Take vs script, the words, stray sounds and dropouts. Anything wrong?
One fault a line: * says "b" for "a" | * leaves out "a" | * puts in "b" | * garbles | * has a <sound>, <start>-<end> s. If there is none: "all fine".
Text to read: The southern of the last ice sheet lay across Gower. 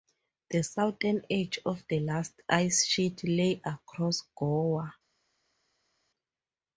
* puts in "edge"